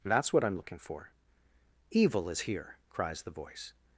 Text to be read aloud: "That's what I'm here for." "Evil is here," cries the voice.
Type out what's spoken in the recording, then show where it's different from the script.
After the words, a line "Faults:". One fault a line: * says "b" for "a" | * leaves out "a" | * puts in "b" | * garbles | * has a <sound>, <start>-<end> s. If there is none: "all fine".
"That's what I'm looking for." "Evil is here," cries the voice.
Faults:
* says "looking" for "here"